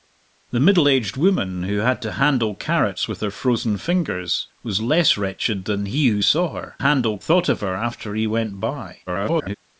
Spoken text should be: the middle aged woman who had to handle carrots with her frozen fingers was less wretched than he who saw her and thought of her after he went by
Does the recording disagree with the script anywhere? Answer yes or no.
yes